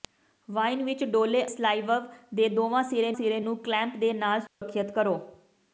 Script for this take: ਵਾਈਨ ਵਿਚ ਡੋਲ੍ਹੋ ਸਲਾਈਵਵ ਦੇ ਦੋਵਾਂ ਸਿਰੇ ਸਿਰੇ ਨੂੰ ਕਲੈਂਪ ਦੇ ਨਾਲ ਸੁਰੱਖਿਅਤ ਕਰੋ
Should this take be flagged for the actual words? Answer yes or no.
no